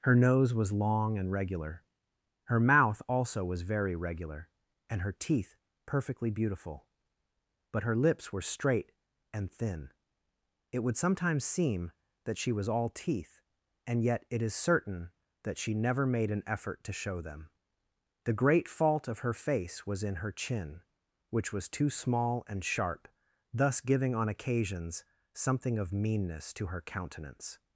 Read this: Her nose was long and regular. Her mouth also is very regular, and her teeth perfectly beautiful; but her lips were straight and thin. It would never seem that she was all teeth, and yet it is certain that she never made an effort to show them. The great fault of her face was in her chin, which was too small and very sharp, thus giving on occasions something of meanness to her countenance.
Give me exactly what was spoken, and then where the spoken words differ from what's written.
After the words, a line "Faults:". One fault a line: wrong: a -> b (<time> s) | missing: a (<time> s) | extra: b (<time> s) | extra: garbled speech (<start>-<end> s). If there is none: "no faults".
Her nose was long and regular. Her mouth also was very regular, and her teeth perfectly beautiful; but her lips were straight and thin. It would sometimes seem that she was all teeth, and yet it is certain that she never made an effort to show them. The great fault of her face was in her chin, which was too small and sharp, thus giving on occasions something of meanness to her countenance.
Faults:
wrong: is -> was (3.5 s)
wrong: never -> sometimes (11.0 s)
missing: very (22.6 s)